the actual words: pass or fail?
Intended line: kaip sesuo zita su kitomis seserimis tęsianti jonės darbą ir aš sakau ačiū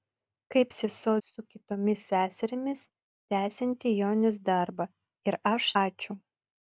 fail